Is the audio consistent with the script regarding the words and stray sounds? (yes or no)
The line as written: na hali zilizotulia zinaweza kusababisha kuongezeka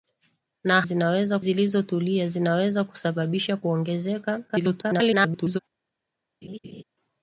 no